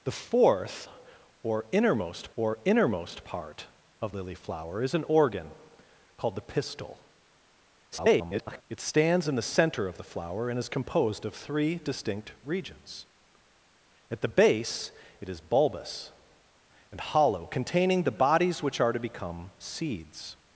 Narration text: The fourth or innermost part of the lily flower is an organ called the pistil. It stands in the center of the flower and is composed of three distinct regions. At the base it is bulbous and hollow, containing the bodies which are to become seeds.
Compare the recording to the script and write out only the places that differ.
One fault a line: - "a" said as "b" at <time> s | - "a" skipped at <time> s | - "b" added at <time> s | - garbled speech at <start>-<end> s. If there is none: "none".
- "or innermost" added at 2.4 s
- "the" skipped at 4.1 s
- garbled speech at 7.9-8.6 s